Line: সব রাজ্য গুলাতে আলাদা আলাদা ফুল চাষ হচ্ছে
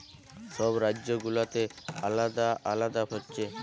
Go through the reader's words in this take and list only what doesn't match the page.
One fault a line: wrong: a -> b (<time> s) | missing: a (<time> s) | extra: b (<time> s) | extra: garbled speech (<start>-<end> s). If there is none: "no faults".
missing: ফুল চাষ (3.0 s)